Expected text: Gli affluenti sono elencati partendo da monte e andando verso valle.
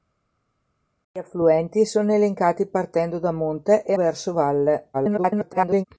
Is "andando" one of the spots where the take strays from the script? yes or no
yes